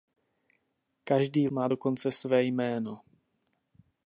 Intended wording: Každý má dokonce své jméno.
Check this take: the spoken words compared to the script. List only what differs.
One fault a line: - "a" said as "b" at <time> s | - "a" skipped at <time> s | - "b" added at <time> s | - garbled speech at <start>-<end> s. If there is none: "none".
none